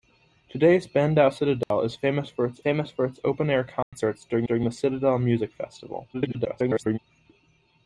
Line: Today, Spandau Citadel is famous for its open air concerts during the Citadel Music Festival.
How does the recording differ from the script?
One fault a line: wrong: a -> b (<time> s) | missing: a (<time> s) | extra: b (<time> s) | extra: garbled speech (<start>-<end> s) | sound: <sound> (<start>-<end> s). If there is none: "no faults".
sound: dropout (1.6-1.7 s)
extra: famous for its (2.6 s)
sound: dropout (3.8-3.9 s)
extra: during (4.4 s)
extra: garbled speech (6.1-7.0 s)